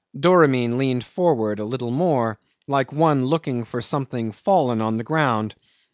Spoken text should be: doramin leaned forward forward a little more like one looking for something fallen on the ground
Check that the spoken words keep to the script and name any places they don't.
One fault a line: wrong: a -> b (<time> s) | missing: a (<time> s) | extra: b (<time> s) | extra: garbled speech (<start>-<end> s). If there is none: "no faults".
missing: forward (1.6 s)